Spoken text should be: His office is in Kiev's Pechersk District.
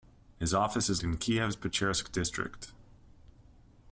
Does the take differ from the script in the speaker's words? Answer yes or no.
no